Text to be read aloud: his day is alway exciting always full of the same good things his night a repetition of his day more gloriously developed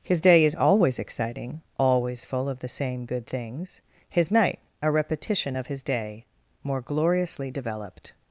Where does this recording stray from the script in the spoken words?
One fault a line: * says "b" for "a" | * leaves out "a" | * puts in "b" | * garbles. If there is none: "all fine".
* says "always" for "alway"